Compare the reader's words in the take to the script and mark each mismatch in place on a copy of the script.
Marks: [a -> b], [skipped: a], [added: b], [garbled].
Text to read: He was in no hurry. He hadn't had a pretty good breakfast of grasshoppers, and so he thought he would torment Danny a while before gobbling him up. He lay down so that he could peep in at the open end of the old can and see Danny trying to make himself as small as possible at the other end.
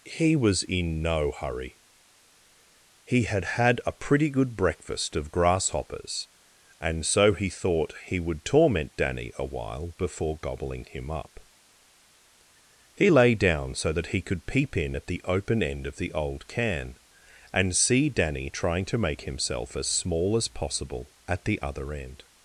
He was in no hurry. He [hadn't -> had] had a pretty good breakfast of grasshoppers, and so he thought he would torment Danny a while before gobbling him up. He lay down so that he could peep in at the open end of the old can and see Danny trying to make himself as small as possible at the other end.